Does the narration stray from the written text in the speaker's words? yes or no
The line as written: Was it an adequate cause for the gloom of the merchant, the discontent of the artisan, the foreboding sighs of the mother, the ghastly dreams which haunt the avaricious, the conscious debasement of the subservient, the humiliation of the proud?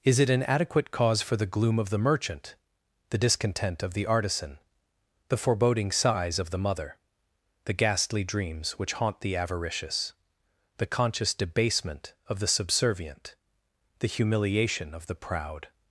yes